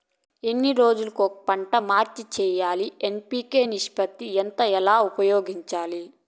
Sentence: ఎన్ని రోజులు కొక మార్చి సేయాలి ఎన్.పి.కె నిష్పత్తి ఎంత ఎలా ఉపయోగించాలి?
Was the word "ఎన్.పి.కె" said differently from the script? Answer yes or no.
no